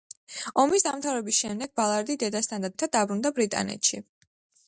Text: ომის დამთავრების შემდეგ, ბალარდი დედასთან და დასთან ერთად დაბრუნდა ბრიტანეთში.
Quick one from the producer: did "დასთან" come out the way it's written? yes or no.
no